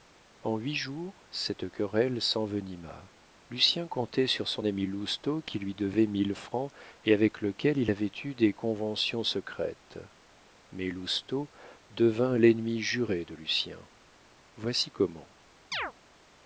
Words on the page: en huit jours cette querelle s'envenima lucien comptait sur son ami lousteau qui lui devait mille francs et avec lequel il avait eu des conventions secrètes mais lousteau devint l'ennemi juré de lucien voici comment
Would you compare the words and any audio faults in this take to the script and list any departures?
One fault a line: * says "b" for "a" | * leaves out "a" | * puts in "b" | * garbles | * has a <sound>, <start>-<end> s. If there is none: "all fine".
* has a chirp, 15.7-15.9 s